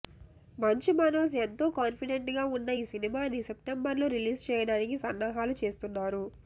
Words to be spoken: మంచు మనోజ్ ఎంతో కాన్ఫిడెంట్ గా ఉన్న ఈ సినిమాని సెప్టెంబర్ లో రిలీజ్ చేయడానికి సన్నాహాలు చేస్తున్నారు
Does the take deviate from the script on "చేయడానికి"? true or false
false